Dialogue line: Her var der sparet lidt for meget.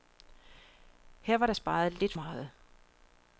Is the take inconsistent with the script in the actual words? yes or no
yes